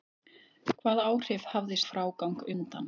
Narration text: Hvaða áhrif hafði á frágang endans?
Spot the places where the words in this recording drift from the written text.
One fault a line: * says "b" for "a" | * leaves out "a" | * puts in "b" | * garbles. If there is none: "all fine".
all fine